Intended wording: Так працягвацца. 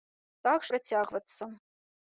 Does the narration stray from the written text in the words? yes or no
no